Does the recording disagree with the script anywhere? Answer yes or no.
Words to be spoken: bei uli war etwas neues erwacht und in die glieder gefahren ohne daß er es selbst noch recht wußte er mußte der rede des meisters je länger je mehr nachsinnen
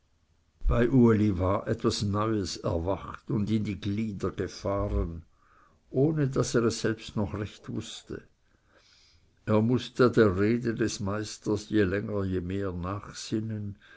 no